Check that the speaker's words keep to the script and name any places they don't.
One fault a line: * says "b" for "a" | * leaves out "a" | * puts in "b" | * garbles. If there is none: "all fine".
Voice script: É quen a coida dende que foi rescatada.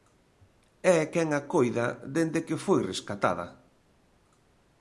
all fine